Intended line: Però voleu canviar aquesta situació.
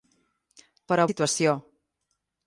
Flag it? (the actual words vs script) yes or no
yes